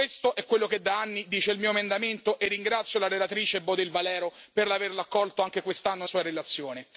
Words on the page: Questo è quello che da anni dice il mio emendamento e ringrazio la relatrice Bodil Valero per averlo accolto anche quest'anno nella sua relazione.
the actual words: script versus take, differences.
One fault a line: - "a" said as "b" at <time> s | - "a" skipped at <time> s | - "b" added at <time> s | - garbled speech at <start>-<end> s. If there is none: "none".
- "nella" skipped at 6.0 s